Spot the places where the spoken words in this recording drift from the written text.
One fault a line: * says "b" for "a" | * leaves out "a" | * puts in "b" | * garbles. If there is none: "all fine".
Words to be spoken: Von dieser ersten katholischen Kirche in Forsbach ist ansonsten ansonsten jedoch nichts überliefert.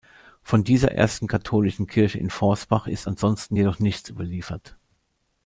* leaves out "ansonsten"